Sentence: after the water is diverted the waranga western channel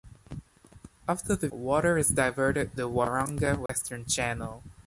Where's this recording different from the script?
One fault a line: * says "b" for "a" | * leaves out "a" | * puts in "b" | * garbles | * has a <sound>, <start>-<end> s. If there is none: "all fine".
* has a dropout, 3.7-3.7 s